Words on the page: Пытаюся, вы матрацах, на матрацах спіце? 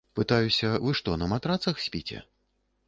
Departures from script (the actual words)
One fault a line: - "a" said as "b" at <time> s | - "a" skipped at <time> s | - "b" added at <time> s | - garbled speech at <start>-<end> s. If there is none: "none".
- "матрацах" said as "што" at 1.0 s